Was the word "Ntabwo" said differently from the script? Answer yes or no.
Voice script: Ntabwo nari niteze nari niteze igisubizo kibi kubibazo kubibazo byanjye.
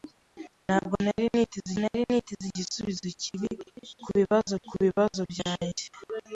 no